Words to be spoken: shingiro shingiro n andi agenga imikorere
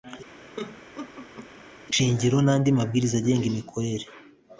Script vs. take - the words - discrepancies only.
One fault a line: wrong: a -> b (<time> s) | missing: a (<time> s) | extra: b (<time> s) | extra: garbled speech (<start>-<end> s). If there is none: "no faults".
missing: shingiro (2.4 s)
extra: mabwiriza (2.8 s)